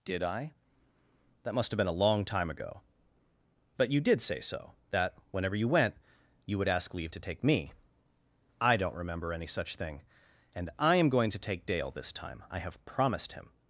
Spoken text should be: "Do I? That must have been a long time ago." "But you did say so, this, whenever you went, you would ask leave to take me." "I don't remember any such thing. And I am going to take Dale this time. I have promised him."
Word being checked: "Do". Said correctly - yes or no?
no